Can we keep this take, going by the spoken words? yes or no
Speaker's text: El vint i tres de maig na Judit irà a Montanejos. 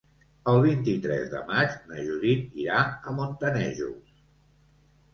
yes